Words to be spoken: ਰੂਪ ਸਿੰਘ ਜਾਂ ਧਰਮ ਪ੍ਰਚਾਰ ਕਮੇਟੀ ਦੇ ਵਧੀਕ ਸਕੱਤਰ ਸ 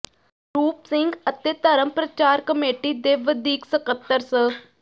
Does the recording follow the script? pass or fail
fail